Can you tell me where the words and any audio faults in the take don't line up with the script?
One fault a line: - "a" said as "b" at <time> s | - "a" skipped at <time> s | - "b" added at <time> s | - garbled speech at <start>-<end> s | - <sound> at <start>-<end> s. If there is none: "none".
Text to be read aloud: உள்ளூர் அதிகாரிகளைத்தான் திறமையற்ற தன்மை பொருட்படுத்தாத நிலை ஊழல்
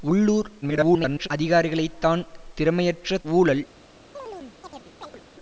- garbled speech at 0.6-1.3 s
- "தன்மை பொருட்படுத்தாத நிலை" skipped at 3.2 s
- chirp at 4.1-5.2 s